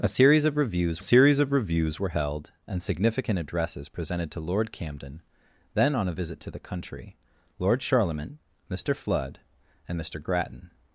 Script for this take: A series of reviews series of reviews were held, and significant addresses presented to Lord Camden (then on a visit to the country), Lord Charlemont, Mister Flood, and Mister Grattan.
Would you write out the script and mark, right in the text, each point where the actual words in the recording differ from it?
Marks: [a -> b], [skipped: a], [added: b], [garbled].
A series of reviews series of reviews were held, and significant addresses presented to Lord Camden (then on a visit to the country), Lord Charlemont, Mister Flood, and Mister Grattan.